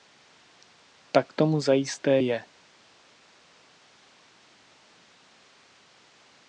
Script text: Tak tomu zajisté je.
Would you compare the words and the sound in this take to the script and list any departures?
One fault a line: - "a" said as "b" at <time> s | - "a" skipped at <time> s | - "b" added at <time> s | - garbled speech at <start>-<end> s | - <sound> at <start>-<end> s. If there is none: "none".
none